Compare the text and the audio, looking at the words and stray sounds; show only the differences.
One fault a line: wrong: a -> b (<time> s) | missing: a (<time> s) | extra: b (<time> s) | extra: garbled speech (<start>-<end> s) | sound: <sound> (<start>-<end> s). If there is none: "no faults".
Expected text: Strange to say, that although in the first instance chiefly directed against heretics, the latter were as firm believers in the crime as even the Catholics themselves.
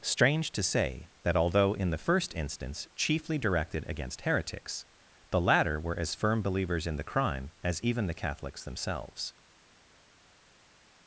no faults